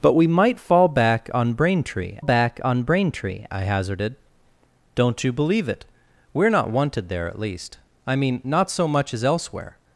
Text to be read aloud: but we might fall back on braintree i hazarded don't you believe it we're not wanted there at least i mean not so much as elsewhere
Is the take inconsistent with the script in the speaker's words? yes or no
yes